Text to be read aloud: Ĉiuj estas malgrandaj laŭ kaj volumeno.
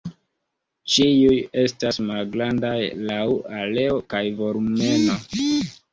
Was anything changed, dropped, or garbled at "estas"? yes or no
no